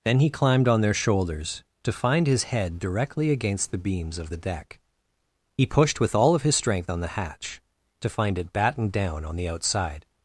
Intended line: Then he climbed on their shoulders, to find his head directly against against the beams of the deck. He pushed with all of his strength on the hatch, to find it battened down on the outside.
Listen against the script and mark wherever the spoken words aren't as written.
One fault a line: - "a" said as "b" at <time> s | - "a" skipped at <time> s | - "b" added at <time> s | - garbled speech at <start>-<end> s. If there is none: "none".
- "against" skipped at 3.7 s